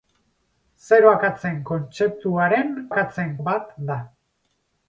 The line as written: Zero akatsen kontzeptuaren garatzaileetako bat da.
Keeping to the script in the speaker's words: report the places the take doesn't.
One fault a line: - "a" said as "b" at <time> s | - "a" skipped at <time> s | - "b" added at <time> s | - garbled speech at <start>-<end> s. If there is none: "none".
- "garatzaileetako" said as "akatsen" at 2.9 s